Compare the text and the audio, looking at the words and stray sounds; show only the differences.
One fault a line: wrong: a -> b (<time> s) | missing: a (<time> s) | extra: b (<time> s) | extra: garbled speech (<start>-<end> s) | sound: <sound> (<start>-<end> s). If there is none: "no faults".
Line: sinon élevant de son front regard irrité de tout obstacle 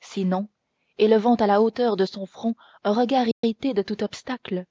extra: à la hauteur (1.4 s)
extra: un (2.8 s)
sound: dropout (3.3-3.4 s)